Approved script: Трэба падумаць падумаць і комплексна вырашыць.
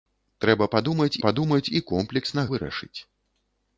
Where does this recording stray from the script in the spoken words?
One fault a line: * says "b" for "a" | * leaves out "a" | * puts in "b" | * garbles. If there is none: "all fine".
all fine